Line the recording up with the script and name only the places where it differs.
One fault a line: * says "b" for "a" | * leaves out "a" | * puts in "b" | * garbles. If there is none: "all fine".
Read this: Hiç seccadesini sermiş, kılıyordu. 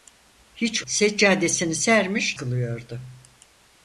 all fine